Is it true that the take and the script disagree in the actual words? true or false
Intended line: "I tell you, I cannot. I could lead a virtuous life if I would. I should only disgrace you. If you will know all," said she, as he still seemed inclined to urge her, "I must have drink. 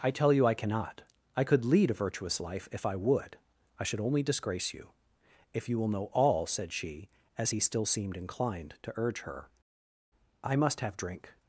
false